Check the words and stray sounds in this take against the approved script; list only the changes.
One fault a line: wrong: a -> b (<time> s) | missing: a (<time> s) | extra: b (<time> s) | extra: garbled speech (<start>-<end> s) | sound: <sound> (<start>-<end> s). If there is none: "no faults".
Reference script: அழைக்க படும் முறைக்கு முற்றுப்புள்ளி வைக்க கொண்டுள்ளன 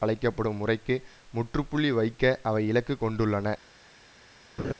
extra: அவை இலக்கு (2.4 s)
sound: laugh (4.6-4.7 s)